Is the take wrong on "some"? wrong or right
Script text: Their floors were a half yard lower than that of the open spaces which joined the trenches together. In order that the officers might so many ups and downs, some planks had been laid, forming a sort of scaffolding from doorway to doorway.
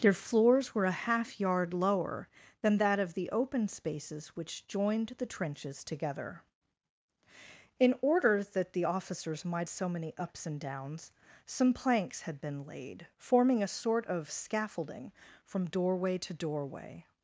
right